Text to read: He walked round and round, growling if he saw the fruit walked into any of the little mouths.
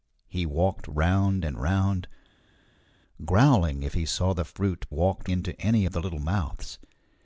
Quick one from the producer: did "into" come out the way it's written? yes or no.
yes